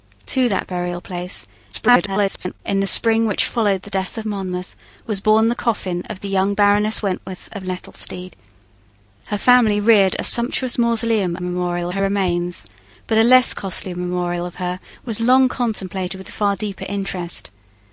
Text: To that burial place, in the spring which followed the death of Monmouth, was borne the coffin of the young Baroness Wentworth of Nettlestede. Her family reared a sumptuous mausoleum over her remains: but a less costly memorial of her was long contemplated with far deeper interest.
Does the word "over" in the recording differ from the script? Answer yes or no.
yes